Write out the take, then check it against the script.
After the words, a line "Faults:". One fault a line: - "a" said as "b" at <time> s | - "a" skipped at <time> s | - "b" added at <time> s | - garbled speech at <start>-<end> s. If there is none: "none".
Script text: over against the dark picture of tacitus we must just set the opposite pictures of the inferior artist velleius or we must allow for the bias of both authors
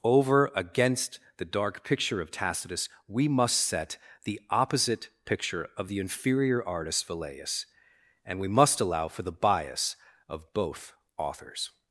over against the dark picture of tacitus we must set the opposite picture of the inferior artist velleius and we must allow for the bias of both authors
Faults:
- "just" skipped at 3.6 s
- "pictures" said as "picture" at 5.2 s
- "or" said as "and" at 8.2 s